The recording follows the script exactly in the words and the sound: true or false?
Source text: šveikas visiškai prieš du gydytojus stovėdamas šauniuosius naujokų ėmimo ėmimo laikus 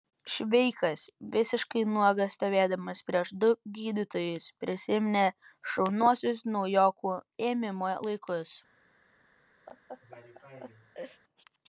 false